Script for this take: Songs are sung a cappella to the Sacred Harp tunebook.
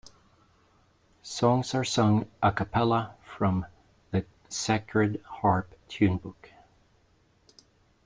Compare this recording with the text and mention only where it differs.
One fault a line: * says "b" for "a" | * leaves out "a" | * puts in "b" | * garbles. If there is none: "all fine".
* says "from" for "to"